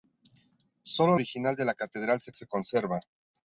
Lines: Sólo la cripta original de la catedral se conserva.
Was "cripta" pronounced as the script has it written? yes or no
no